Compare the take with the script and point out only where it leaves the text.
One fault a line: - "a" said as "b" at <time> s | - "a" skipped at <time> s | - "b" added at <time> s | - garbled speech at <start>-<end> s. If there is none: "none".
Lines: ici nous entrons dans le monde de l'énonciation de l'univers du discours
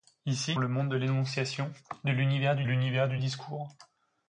- "nous entrons dans" skipped at 0.6 s
- "l'univers du" added at 2.6 s